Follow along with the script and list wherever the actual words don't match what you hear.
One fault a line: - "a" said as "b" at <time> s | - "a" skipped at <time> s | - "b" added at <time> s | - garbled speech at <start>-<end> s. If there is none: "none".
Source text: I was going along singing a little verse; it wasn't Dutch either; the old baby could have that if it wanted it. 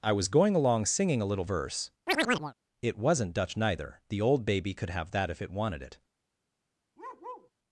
- "either" said as "neither" at 3.5 s